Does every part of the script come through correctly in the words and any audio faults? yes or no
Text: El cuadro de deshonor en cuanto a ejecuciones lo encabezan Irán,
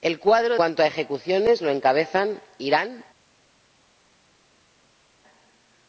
no